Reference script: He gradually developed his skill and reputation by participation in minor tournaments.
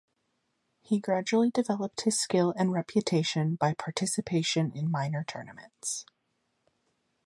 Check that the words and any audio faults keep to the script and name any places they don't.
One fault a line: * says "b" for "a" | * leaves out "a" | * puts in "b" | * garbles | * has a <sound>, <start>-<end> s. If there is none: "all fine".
all fine